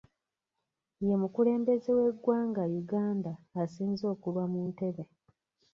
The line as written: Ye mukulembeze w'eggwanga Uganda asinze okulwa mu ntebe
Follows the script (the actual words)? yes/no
yes